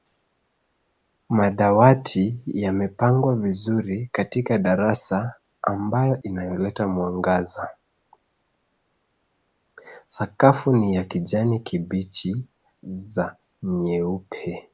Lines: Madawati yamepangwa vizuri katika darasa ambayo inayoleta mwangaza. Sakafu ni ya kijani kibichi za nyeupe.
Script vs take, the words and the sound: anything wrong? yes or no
no